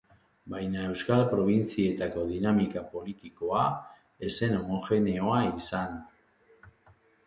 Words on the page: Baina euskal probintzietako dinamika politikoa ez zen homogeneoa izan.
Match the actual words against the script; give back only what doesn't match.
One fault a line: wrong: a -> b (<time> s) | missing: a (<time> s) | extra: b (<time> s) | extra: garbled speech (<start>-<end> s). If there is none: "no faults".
no faults